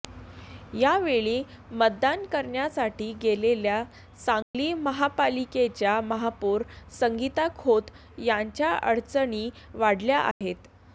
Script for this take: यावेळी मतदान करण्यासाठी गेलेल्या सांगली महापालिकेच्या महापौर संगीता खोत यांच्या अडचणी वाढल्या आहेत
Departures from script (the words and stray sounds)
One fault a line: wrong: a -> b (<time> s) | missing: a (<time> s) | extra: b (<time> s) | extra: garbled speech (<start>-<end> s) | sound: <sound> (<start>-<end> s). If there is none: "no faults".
sound: dropout (4.4-4.5 s)
sound: dropout (10.3-10.4 s)